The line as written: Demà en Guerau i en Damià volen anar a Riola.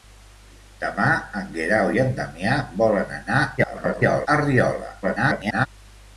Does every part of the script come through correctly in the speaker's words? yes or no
no